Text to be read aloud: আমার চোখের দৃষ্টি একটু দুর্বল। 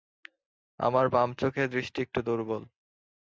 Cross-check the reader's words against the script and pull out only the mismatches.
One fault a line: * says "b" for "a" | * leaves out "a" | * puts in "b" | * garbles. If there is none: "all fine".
* puts in "বাম"